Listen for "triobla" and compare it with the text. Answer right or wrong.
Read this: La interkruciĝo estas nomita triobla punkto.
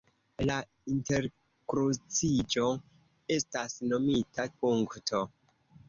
wrong